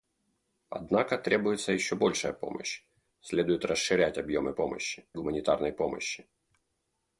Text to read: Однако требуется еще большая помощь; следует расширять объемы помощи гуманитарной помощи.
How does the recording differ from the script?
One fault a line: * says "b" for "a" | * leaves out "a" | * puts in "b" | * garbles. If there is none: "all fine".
all fine